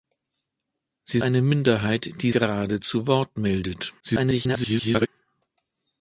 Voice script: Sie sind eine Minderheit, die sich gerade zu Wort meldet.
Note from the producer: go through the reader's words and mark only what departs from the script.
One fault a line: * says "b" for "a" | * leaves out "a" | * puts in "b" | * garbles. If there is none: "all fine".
* leaves out "sind"
* leaves out "sich"
* garbles